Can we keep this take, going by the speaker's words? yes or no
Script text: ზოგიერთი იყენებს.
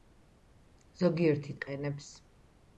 yes